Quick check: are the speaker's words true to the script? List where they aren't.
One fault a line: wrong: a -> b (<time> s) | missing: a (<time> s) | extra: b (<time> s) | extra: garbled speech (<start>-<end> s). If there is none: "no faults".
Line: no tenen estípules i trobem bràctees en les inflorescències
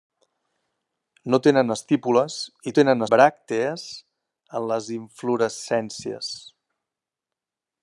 wrong: trobem -> tenen (2.8 s)